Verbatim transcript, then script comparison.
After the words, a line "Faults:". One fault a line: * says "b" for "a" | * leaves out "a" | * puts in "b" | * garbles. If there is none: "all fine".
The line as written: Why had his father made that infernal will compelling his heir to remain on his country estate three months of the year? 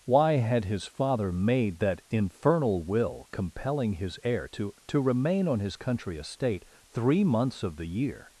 Why had his father made that infernal will compelling his heir to to remain on his country estate three months of the year?
Faults:
* puts in "to"